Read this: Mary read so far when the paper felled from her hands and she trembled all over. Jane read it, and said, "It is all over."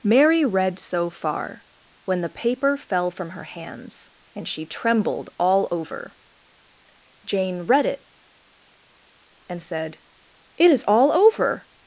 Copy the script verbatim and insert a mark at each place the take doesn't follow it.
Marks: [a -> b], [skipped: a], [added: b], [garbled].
Mary read so far when the paper [felled -> fell] from her hands and she trembled all over. Jane read it, and said, "It is all over."